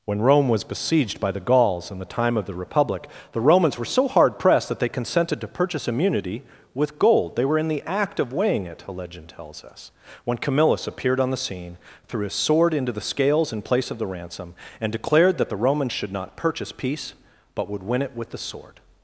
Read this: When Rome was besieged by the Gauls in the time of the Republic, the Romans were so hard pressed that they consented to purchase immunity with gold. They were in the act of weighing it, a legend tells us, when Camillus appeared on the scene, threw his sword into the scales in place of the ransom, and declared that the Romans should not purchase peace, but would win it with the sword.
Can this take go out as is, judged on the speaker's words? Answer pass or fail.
pass